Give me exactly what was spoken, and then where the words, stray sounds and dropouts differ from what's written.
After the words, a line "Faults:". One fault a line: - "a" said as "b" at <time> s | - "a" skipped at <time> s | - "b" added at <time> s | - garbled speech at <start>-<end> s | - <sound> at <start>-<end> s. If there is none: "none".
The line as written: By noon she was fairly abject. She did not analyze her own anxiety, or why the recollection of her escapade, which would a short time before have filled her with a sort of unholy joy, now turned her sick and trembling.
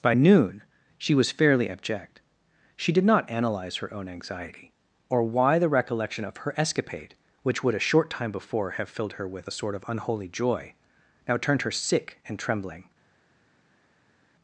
By noon she was fairly abject. She did not analyze her own anxiety, or why the recollection of her escapade, which would a short time before have filled her with a sort of unholy joy, now turned her sick and trembling.
Faults:
none